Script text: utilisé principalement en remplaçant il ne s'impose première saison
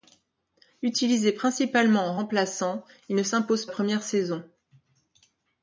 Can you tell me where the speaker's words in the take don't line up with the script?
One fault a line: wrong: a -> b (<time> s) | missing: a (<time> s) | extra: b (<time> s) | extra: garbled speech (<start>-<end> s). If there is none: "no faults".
no faults